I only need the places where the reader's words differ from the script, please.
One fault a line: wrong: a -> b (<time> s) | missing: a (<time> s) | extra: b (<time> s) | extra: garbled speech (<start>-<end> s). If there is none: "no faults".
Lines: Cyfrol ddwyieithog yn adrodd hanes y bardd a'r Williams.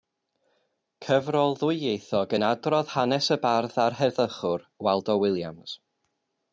extra: heddychwr Waldo (4.0 s)